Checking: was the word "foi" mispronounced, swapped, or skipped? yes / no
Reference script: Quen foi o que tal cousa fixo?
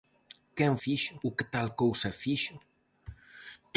yes